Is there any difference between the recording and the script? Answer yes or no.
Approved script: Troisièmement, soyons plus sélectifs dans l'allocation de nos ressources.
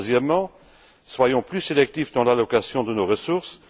no